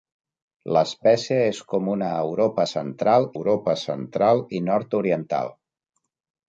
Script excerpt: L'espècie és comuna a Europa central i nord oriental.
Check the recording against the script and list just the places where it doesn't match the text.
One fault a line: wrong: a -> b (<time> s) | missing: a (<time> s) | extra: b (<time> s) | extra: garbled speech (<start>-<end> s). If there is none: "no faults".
extra: Europa central (3.4 s)